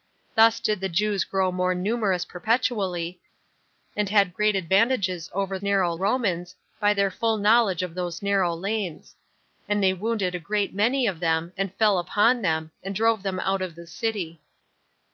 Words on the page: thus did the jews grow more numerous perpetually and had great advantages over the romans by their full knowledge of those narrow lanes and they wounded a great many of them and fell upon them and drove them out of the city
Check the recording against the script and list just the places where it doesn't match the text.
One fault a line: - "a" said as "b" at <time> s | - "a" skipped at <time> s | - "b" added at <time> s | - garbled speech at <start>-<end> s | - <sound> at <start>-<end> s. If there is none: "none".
- "the" said as "narrow" at 5.6 s